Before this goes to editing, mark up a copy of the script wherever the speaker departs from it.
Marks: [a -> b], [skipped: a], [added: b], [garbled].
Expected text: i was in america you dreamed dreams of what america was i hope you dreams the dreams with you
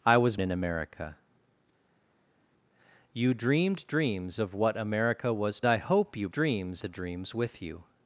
i was in america you dreamed dreams of what america was i hope you dreams the dreams with you